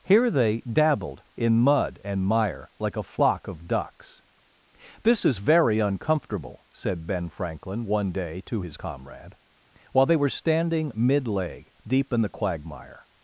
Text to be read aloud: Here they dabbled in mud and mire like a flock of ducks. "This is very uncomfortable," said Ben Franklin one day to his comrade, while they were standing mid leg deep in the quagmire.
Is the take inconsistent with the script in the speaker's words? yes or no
no